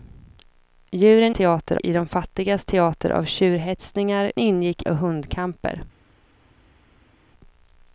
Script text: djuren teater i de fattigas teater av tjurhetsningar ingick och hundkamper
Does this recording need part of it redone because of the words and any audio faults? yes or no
no